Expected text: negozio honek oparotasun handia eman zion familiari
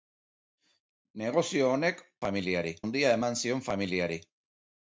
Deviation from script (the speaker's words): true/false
true